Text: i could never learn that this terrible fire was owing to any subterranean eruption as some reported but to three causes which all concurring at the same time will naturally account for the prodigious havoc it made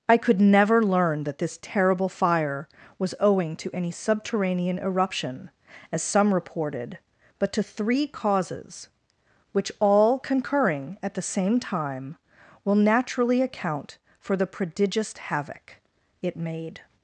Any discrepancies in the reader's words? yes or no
no